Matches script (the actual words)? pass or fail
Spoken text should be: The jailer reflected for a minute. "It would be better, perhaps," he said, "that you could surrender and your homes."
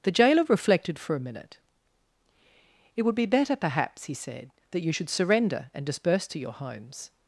fail